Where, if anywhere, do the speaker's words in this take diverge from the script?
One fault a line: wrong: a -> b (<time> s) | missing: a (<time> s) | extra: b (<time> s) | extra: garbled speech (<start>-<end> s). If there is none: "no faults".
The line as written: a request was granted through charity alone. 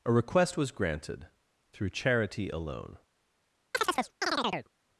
no faults